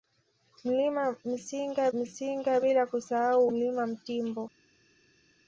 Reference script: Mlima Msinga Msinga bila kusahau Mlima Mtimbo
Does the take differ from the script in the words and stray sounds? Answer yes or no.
no